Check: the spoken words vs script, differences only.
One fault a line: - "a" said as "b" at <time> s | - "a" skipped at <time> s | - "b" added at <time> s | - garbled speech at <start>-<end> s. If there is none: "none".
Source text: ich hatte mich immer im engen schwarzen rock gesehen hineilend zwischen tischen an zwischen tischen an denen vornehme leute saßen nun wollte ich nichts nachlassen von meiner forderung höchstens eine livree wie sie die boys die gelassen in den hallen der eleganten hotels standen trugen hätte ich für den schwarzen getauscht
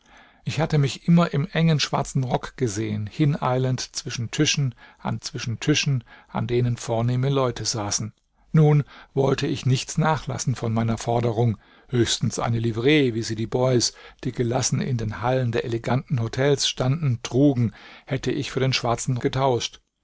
none